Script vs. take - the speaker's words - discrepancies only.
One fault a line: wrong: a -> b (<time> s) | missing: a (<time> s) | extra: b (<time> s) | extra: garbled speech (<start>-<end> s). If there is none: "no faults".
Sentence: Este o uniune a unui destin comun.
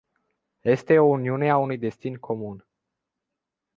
no faults